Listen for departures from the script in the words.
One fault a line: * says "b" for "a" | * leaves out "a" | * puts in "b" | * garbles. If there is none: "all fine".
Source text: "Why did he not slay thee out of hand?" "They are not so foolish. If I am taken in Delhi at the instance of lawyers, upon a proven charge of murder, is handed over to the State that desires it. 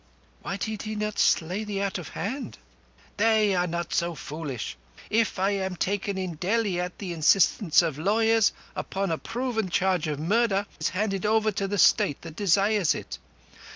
all fine